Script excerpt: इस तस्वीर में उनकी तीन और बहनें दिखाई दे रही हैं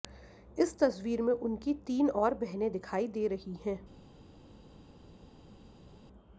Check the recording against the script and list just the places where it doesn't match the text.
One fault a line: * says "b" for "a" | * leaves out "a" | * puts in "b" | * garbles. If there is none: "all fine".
all fine